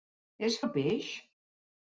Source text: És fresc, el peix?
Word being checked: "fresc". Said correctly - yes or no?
no